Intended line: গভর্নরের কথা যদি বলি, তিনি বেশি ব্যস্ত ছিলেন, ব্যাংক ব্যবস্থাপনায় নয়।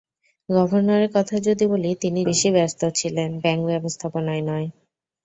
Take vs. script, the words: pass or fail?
pass